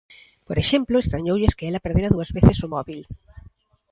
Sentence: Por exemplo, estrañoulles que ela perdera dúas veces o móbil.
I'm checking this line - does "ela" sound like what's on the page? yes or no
yes